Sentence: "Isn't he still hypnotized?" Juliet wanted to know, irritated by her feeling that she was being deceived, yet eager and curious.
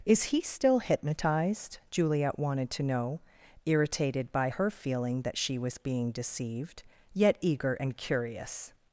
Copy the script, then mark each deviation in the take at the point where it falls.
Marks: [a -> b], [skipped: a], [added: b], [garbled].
["Isn't -> Is] he still hypnotized?" Juliet wanted to know, irritated by her feeling that she was being deceived, yet eager and curious.